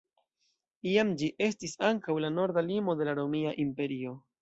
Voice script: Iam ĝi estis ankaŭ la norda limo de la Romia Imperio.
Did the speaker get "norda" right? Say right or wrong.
right